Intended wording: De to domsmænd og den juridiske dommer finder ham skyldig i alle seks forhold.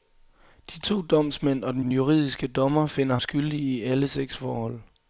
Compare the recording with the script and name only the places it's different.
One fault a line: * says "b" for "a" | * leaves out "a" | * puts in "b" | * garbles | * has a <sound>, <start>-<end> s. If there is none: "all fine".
* puts in "den"
* leaves out "ham"